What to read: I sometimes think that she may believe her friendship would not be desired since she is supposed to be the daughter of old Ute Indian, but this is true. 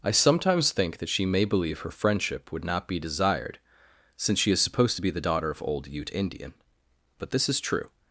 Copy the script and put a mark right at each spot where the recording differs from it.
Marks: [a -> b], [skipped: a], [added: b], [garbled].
I sometimes think that she may believe her friendship would not be desired since she is supposed to be the daughter of old Ute Indian, but this is true.